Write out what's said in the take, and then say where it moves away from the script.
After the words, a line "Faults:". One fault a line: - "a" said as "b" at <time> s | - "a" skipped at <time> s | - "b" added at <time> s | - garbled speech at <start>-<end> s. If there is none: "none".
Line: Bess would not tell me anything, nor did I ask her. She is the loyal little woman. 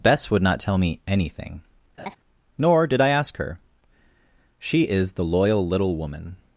Bess would not tell me anything, nor did I ask her. She is the loyal little woman.
Faults:
none